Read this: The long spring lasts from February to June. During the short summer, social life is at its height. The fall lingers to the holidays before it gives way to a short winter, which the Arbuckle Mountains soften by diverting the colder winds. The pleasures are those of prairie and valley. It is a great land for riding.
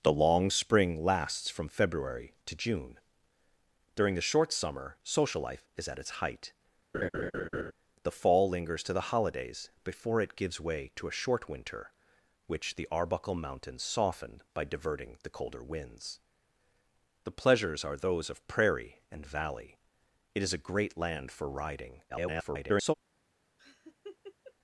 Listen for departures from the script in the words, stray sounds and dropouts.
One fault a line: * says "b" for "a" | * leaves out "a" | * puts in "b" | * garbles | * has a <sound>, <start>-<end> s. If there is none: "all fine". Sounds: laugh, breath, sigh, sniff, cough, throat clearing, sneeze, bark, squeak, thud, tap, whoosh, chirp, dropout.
* has a laugh, 6.9-7.7 s
* garbles
* has a laugh, 23.6-24.5 s